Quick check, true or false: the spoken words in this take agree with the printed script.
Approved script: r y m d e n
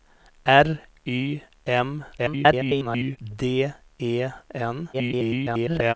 false